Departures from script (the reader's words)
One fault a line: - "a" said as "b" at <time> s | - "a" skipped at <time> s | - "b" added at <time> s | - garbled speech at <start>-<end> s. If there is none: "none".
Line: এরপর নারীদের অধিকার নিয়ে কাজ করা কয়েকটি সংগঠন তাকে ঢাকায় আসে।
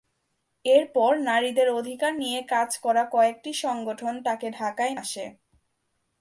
none